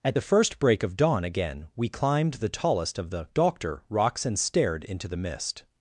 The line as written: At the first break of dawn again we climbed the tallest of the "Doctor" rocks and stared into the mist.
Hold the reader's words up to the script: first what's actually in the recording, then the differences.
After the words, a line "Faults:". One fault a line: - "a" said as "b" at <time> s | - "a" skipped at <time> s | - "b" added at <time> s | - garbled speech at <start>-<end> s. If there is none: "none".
At the first break of dawn again we climbed the tallest of the "Doctor" rocks and stared into the mist.
Faults:
none